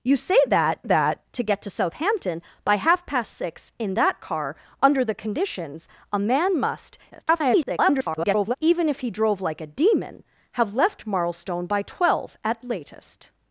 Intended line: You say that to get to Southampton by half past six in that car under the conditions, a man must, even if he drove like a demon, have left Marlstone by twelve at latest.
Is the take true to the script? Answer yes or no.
no